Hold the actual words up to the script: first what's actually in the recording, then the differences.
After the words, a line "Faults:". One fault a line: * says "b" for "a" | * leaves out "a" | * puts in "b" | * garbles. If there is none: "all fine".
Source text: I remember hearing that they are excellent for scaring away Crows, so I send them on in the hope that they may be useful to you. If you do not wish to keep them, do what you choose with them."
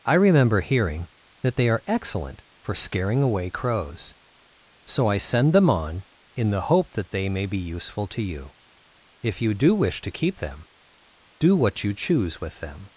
I remember hearing that they are excellent for scaring away Crows, so I send them on in the hope that they may be useful to you. If you do wish to keep them, do what you choose with them."
Faults:
* leaves out "not"